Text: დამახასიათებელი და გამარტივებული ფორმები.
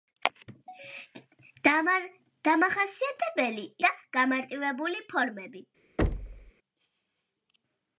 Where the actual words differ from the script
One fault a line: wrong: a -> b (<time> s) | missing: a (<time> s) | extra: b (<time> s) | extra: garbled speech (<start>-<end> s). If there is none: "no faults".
no faults